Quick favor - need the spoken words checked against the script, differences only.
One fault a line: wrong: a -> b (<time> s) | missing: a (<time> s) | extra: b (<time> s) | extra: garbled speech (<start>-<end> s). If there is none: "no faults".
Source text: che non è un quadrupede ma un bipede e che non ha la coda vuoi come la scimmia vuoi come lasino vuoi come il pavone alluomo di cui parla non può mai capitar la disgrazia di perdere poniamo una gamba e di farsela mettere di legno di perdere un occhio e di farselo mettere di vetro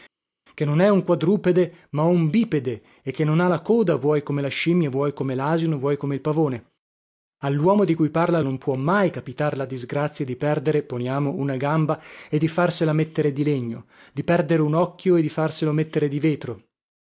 no faults